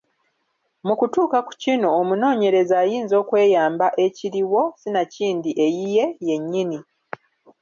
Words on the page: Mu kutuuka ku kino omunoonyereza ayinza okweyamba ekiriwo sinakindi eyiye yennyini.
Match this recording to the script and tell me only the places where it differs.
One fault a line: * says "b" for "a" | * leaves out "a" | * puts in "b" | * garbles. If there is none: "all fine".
all fine